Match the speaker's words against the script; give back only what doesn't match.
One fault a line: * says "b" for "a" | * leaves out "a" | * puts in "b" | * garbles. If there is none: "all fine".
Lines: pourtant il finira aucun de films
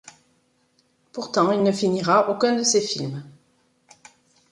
* puts in "ne"
* puts in "ses"